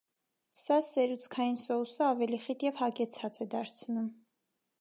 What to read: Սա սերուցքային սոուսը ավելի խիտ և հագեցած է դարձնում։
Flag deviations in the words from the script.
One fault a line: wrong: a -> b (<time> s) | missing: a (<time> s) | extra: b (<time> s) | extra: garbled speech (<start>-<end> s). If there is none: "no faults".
no faults